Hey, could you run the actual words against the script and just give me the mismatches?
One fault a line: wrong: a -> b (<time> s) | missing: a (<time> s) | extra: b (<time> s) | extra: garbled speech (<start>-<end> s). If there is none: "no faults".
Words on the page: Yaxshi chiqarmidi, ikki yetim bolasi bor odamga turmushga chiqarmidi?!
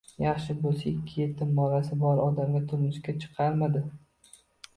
wrong: chiqarmidi -> bo'lsa (0.6 s)